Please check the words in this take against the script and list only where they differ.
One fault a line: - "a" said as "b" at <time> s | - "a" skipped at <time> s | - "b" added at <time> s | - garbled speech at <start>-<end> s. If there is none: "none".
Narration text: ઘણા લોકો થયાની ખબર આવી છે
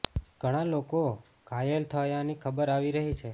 - "ઘાયલ" added at 1.5 s
- "રહી" added at 3.0 s